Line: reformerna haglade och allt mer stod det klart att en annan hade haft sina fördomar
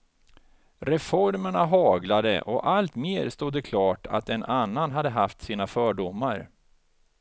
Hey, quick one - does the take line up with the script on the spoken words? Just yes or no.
yes